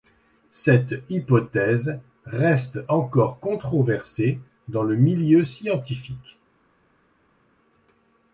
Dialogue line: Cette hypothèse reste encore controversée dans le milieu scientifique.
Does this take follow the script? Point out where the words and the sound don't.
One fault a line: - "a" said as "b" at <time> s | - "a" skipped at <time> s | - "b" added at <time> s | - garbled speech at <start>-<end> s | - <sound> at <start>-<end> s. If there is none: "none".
none